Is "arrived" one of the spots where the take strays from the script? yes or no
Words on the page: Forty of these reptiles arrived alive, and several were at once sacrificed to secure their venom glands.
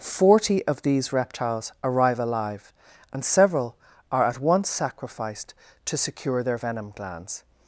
yes